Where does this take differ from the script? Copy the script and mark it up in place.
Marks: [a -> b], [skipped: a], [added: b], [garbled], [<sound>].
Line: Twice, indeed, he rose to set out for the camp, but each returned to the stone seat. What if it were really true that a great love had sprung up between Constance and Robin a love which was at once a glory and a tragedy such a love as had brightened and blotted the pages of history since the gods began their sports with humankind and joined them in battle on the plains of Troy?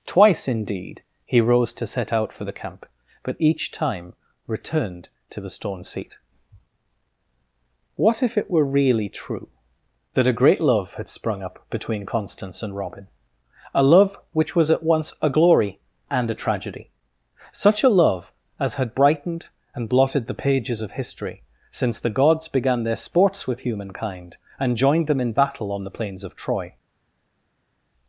Twice, indeed, he rose to set out for the camp, but each [added: time] returned to the stone seat. What if it were really true that a great love had sprung up between Constance and Robin a love which was at once a glory and a tragedy such a love as had brightened and blotted the pages of history since the gods began their sports with humankind and joined them in battle on the plains of Troy?